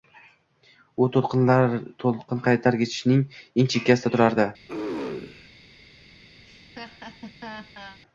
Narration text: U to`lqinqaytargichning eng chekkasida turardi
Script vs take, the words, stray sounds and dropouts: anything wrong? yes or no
yes